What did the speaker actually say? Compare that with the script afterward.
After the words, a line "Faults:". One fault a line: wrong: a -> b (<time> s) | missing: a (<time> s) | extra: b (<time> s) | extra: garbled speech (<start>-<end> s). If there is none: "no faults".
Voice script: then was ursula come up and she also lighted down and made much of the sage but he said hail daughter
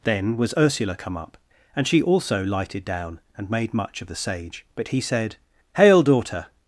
then was ursula come up and she also lighted down and made much of the sage but he said hail daughter
Faults:
no faults